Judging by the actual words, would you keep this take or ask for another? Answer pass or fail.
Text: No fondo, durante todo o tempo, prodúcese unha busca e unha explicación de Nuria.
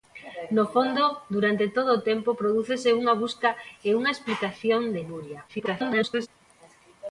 fail